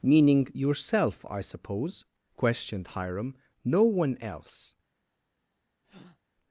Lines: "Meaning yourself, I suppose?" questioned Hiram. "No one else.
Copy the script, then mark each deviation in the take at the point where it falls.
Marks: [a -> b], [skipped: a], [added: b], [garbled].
"Meaning yourself, I suppose?" questioned Hiram. "No one else.